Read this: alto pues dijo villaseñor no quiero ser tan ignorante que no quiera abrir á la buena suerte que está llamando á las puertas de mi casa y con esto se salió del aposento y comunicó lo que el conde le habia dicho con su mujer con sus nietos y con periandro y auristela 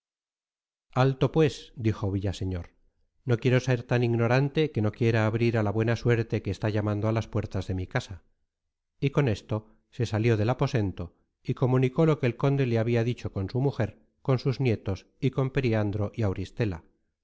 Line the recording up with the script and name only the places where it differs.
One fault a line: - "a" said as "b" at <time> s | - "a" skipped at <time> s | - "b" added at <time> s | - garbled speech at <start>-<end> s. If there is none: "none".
none